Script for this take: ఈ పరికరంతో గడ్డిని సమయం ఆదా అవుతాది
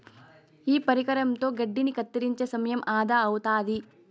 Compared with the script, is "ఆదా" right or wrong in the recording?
right